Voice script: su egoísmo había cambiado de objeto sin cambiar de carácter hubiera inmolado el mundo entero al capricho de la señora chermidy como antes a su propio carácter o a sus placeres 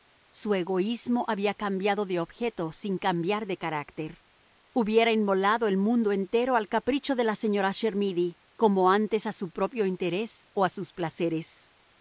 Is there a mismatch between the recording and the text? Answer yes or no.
yes